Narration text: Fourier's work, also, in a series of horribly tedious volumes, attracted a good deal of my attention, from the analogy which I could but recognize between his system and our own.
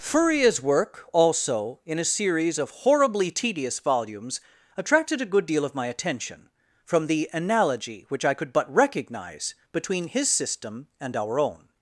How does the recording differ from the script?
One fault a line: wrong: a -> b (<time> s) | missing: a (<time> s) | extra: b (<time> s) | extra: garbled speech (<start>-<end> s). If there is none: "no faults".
no faults